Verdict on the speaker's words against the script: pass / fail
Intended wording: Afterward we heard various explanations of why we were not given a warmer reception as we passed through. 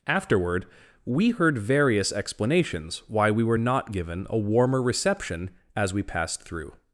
fail